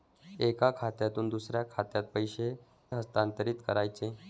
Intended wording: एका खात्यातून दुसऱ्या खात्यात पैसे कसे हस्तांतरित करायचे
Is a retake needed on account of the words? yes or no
yes